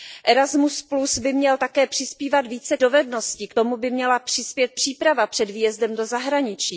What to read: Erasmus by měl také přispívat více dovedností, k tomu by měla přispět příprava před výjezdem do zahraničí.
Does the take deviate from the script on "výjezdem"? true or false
false